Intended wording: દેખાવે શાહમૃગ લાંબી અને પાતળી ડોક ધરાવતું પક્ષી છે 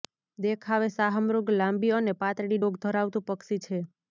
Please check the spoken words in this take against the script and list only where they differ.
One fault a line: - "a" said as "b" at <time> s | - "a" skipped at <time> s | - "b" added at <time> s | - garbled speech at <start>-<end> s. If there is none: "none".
none